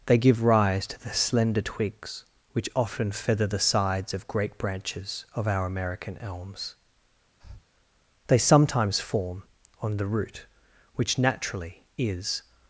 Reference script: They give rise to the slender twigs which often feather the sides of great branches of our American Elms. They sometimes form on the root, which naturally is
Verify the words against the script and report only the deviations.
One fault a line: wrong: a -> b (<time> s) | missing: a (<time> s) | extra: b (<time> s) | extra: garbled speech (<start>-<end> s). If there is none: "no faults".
no faults